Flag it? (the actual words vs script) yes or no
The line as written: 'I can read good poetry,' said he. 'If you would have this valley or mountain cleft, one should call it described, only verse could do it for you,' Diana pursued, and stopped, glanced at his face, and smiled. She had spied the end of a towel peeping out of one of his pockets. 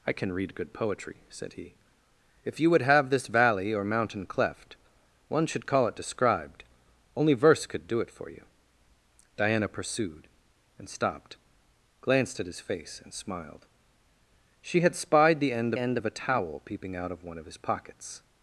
yes